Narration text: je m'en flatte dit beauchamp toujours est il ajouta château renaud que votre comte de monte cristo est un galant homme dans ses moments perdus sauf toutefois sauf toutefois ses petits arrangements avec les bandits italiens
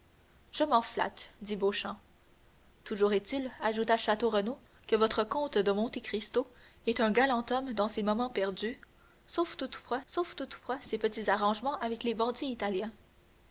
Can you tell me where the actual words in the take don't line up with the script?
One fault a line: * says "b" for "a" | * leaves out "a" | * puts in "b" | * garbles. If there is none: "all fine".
all fine